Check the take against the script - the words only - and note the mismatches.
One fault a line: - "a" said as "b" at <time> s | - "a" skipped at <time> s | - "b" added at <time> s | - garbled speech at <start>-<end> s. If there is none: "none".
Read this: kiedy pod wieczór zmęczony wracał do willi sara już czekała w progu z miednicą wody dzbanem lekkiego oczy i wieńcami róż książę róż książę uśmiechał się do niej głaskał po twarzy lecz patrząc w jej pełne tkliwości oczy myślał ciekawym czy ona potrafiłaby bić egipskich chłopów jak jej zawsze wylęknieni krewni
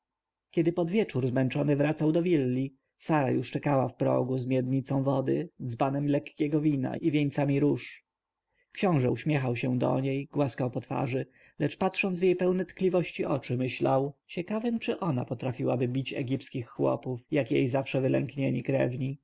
- "oczy" said as "wina" at 6.6 s
- "róż książę" skipped at 9.1 s